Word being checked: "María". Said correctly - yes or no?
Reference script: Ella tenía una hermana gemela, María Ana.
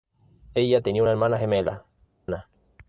no